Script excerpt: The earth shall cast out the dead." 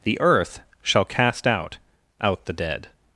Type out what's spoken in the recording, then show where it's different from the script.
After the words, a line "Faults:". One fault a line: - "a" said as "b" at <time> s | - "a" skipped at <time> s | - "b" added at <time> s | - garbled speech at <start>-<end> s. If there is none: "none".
The earth shall cast out out the dead."
Faults:
- "out" added at 2.2 s